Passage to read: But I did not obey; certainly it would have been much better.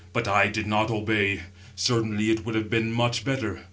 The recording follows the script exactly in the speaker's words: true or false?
true